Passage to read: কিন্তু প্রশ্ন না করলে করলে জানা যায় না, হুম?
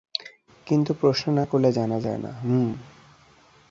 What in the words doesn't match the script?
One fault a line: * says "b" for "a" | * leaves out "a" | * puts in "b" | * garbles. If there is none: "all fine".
* leaves out "করলে"